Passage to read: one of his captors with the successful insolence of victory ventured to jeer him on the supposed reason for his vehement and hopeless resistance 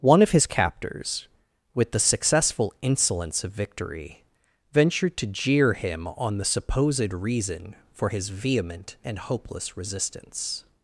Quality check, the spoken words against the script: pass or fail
pass